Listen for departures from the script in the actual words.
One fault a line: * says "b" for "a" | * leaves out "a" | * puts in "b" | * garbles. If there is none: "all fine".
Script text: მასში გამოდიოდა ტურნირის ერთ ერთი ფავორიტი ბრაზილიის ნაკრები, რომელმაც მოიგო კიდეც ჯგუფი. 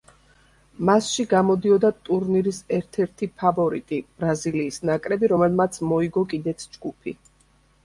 all fine